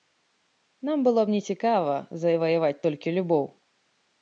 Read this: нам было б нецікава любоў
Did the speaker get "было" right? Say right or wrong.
right